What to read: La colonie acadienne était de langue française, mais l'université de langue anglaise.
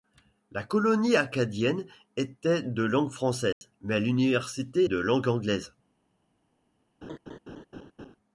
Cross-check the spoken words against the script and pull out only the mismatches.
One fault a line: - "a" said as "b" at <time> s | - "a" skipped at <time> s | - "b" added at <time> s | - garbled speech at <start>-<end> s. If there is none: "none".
none